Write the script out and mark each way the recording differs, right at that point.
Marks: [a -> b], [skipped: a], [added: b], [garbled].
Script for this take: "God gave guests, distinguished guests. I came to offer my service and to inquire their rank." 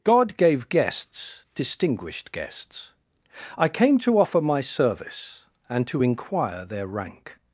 "God gave guests, distinguished guests. I came to offer my service and to inquire their rank."